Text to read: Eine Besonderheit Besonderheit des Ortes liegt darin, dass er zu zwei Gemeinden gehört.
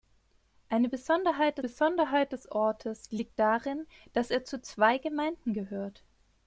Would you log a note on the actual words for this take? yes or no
no